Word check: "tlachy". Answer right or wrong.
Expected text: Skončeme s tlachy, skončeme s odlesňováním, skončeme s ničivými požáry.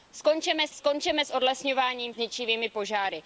wrong